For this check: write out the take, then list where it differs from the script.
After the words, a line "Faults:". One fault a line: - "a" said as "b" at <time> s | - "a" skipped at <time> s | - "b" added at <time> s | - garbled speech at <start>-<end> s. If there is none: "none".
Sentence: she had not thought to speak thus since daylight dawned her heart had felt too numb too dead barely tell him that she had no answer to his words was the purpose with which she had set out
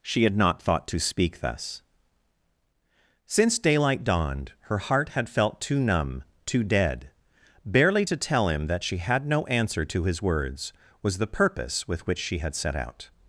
she had not thought to speak thus since daylight dawned her heart had felt too numb too dead barely to tell him that she had no answer to his words was the purpose with which she had set out
Faults:
- "to" added at 8.1 s